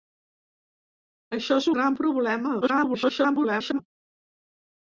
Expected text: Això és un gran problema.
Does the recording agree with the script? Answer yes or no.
no